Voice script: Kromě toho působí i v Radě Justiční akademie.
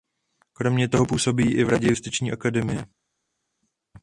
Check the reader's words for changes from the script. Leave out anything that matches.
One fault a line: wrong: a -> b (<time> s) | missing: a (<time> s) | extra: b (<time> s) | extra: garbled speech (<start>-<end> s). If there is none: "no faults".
no faults